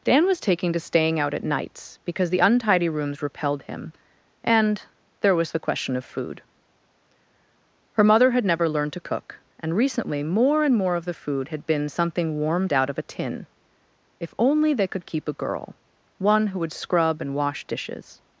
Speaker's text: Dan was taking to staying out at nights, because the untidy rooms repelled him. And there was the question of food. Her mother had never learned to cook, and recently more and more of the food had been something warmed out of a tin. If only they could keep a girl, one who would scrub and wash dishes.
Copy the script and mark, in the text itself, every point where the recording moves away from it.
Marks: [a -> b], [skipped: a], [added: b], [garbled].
Dan was taking to staying out at nights, because the untidy rooms repelled him. And there was the question of food. Her mother had never learned to cook, and recently more and more of the food had been something warmed out of a tin. If only they could keep a girl, one who would scrub and wash dishes.